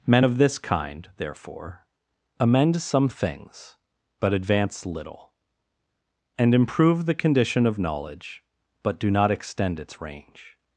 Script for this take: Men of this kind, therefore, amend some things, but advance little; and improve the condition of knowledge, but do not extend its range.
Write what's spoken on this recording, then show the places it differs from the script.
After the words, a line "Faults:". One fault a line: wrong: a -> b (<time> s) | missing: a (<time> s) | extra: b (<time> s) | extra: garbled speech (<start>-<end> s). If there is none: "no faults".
Men of this kind, therefore, amend some things, but advance little; and improve the condition of knowledge, but do not extend its range.
Faults:
no faults